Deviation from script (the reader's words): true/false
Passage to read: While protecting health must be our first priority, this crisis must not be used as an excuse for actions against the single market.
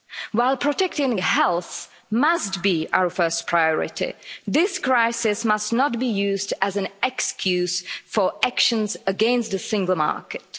false